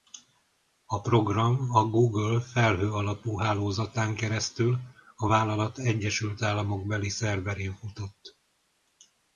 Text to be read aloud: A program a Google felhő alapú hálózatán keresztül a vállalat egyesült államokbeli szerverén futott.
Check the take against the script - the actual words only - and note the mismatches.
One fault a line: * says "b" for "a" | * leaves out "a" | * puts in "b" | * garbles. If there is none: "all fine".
all fine